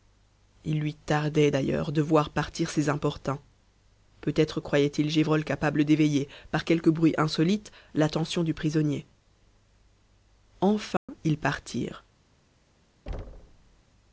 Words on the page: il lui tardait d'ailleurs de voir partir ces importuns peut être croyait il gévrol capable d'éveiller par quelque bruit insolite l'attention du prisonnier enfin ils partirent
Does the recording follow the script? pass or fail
pass